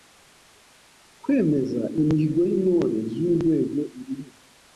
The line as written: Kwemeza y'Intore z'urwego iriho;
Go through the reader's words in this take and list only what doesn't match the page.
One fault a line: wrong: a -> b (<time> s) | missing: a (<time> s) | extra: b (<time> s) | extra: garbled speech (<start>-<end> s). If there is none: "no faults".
extra: imihigo (2.0 s)